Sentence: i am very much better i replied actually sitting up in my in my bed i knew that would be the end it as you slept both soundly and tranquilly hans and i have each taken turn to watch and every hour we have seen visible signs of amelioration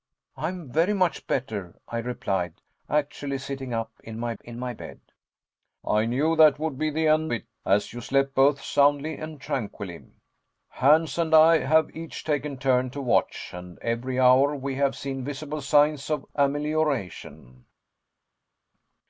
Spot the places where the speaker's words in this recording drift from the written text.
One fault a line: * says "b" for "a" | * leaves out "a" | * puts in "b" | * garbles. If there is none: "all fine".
all fine